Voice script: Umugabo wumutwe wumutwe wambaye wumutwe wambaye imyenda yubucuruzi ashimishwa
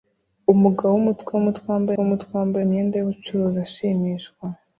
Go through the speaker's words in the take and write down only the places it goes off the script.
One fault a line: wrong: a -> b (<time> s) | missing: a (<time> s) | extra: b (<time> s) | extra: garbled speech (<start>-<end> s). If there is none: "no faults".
no faults